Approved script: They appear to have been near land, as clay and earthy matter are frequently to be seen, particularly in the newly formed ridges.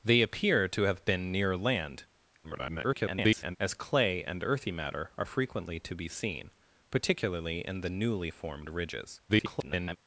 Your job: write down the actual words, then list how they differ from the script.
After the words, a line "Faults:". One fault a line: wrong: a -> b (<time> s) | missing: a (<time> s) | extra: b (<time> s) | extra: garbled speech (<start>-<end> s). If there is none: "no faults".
They appear to have been near land, [garbled] as clay and earthy matter are frequently to be seen, particularly in the newly formed ridges. [garbled]
Faults:
extra: garbled speech (2.4-3.6 s)
extra: garbled speech (9.3-10.0 s)